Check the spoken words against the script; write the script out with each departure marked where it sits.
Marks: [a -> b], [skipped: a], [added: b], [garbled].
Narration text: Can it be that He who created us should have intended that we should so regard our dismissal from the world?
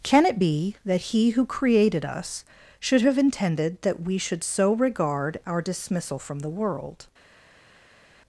Can it be that He who created us should have intended that we should so regard our dismissal from the world?